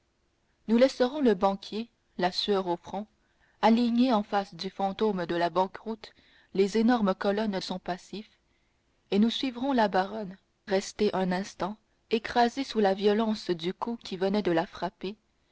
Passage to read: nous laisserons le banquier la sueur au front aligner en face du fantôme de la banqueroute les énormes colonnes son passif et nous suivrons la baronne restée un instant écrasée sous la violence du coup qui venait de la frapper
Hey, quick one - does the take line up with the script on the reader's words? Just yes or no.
yes